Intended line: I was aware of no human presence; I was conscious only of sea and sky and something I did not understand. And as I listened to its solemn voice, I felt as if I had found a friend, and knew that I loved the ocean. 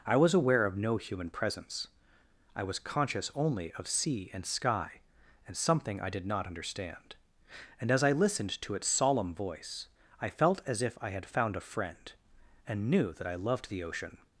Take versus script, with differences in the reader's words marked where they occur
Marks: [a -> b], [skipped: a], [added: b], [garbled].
I was aware of no human presence; I was conscious only of sea and sky and something I did not understand. And as I listened to its solemn voice, I felt as if I had found a friend, and knew that I loved the ocean.